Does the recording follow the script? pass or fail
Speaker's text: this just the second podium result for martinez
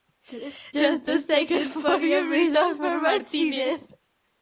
pass